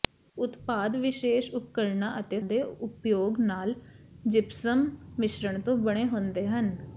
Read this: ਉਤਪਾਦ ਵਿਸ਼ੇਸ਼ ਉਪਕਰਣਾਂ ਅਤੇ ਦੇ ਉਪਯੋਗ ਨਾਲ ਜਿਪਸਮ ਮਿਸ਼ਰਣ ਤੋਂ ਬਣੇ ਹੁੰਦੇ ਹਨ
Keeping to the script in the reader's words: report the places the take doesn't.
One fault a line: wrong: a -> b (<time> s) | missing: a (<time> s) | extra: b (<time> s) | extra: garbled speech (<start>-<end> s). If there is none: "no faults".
no faults